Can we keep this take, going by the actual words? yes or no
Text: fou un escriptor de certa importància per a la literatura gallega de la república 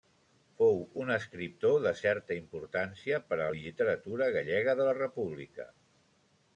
yes